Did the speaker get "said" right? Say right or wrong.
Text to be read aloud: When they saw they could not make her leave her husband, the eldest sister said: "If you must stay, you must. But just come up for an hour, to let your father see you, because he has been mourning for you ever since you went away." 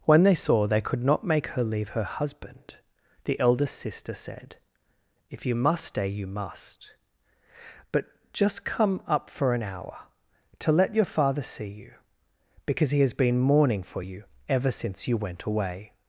right